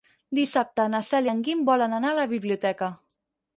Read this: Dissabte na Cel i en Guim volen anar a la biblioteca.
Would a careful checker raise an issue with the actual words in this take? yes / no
no